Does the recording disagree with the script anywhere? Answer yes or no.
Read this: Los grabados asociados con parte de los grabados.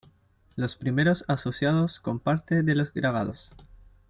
yes